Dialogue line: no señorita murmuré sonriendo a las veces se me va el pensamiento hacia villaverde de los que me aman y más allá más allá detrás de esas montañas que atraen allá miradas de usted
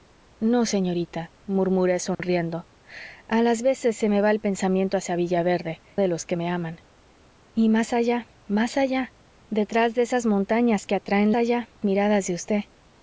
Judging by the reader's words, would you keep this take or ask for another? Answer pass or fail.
pass